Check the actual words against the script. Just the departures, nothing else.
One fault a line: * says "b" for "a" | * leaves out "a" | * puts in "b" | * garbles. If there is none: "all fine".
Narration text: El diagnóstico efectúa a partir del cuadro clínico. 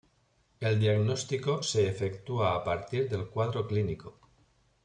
* puts in "se"